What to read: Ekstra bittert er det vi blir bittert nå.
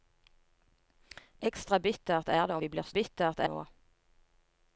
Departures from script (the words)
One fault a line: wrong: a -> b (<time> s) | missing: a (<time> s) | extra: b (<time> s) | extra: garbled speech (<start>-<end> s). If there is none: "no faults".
no faults